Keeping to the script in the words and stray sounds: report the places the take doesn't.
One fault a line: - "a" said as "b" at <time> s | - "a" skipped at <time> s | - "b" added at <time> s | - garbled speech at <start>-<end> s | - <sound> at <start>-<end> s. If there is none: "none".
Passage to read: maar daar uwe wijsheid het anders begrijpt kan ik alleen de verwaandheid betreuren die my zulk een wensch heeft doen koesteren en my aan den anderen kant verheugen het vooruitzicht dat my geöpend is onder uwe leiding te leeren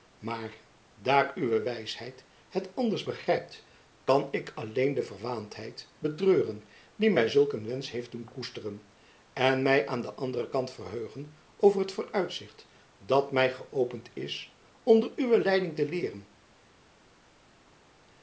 - "over" added at 11.6 s